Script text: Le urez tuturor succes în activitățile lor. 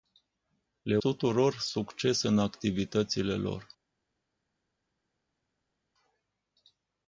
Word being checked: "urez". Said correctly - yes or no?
no